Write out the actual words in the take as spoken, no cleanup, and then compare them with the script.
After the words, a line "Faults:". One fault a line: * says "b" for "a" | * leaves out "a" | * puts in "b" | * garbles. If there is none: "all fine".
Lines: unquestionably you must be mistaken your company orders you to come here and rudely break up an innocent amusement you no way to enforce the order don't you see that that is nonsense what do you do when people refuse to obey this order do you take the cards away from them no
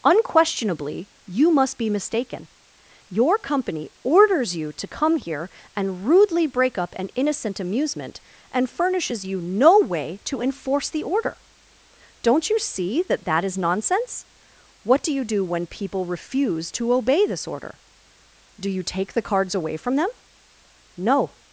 unquestionably you must be mistaken your company orders you to come here and rudely break up an innocent amusement and furnishes you no way to enforce the order don't you see that that is nonsense what do you do when people refuse to obey this order do you take the cards away from them no
Faults:
* puts in "and furnishes"